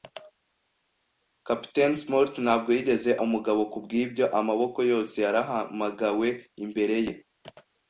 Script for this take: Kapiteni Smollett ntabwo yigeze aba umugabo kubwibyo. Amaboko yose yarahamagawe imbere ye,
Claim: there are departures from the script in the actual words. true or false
true